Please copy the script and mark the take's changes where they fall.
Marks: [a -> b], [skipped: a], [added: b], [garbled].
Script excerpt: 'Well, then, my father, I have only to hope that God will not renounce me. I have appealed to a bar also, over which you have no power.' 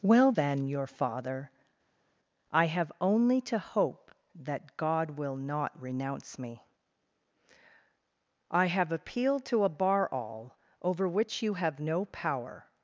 'Well, then, [my -> your] father, I have only to hope that God will not renounce me. I have appealed to a bar [also, -> all] over which you have no power.'